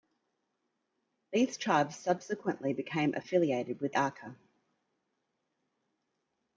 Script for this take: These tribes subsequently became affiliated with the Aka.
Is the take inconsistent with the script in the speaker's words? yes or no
yes